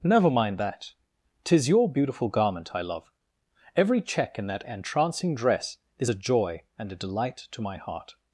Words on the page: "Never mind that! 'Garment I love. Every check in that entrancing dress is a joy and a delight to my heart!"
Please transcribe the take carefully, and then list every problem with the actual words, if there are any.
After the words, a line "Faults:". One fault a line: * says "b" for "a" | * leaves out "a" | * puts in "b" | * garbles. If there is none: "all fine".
"Never mind that! 'Tis your beautiful garment I love. Every check in that entrancing dress is a joy and a delight to my heart!"
Faults:
* puts in "Tis your beautiful"